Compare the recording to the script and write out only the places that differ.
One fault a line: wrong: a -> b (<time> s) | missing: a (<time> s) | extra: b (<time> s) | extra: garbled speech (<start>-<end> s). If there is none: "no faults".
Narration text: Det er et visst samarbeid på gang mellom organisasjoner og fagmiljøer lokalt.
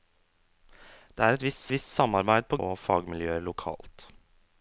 extra: visst (1.7 s)
missing: gang mellom organisasjoner (2.6 s)